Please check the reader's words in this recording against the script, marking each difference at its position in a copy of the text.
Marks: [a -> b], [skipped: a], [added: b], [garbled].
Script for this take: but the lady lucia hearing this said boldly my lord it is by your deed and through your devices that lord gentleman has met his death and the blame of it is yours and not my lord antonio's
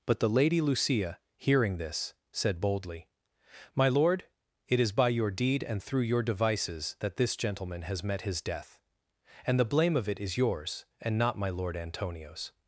but the lady lucia hearing this said boldly my lord it is by your deed and through your devices that [lord -> this] gentleman has met his death and the blame of it is yours and not my lord antonio's